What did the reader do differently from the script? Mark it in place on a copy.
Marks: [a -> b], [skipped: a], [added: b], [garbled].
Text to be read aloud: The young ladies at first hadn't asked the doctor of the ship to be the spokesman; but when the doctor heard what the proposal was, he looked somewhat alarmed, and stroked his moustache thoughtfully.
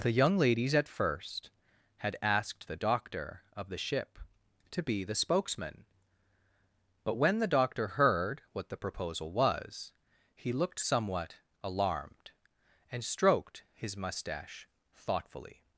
The young ladies at first [hadn't -> had] asked the doctor of the ship to be the spokesman; but when the doctor heard what the proposal was, he looked somewhat alarmed, and stroked his moustache thoughtfully.